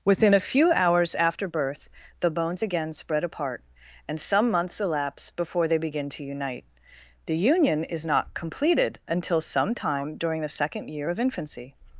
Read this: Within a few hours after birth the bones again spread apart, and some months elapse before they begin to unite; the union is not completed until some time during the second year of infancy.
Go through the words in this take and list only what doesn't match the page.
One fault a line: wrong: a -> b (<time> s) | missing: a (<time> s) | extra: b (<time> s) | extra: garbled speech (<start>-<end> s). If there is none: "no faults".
no faults